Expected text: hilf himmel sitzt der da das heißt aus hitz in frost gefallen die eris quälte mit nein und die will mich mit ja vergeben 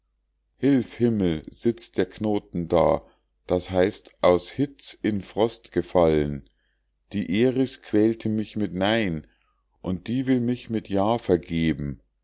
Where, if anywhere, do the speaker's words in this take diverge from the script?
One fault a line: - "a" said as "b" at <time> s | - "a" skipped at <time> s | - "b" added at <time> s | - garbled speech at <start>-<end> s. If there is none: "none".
- "knoten" added at 2.1 s
- "mich" added at 8.3 s